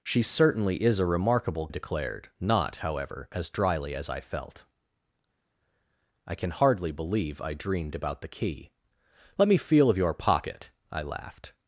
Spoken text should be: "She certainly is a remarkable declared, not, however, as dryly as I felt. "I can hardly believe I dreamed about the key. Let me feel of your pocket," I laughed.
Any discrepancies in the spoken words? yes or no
no